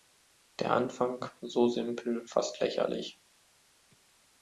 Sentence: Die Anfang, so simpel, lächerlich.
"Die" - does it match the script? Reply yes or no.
no